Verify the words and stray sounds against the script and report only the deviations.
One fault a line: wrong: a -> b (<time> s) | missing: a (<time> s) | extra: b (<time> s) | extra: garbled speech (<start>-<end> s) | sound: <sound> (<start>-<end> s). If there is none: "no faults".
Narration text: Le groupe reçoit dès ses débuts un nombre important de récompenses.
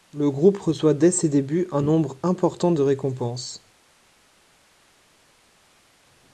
no faults